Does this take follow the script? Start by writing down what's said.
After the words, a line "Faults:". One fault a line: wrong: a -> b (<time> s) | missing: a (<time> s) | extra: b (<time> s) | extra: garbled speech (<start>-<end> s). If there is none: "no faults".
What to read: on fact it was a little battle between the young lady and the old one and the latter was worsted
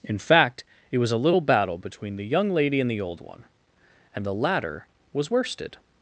in fact it was a little battle between the young lady and the old one and the latter was worsted
Faults:
wrong: on -> in (0.0 s)